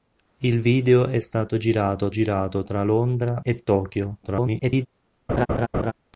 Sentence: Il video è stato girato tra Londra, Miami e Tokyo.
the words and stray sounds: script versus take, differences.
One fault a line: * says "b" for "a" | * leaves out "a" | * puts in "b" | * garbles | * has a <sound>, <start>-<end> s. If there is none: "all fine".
* puts in "girato"
* leaves out "Miami"
* garbles
* has a laugh, 5.3-5.9 s